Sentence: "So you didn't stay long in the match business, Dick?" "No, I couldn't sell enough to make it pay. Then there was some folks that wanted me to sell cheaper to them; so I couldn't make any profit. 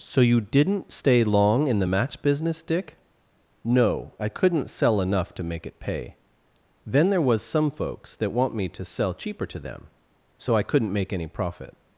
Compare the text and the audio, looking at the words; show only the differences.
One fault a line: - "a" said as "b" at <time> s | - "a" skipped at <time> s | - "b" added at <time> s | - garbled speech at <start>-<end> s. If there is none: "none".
- "wanted" said as "want" at 8.3 s